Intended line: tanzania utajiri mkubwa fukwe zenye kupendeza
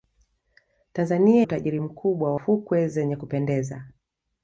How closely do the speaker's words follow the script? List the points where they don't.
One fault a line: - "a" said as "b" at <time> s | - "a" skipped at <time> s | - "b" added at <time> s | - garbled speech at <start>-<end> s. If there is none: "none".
none